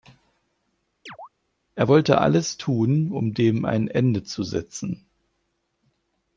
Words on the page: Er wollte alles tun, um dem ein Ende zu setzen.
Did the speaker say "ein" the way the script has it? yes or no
yes